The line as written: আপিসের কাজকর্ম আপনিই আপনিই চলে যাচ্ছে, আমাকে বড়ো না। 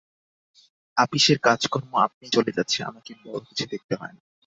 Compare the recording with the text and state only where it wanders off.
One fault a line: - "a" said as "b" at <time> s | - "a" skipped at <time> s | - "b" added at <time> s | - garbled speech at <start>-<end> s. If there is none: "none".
- "আপনিই" skipped at 2.4 s
- "কিছু দেখতে হয়" added at 3.5 s